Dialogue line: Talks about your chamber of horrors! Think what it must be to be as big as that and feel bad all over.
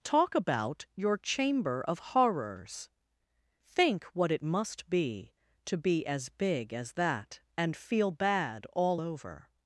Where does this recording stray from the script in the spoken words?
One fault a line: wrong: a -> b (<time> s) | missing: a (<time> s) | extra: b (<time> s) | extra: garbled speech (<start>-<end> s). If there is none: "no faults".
wrong: Talks -> Talk (0.0 s)